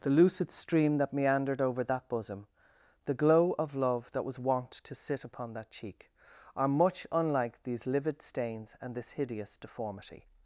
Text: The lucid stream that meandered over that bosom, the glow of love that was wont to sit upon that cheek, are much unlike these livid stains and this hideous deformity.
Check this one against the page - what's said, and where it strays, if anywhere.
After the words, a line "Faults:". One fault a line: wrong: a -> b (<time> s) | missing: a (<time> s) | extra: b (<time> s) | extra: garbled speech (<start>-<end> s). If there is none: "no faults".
The lucid stream that meandered over that bosom, the glow of love that was wont to sit upon that cheek, are much unlike these livid stains and this hideous deformity.
Faults:
no faults